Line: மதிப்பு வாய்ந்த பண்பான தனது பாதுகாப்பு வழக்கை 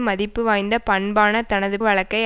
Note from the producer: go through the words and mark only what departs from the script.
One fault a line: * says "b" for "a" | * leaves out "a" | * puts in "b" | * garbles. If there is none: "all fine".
* leaves out "பாதுகாப்பு"